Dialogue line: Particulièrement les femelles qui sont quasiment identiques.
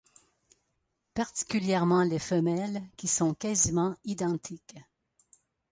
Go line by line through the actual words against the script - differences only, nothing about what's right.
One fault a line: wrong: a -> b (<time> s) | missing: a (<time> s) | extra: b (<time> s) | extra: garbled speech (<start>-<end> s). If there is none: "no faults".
no faults